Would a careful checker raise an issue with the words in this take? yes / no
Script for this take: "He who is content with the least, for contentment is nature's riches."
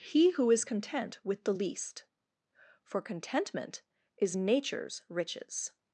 no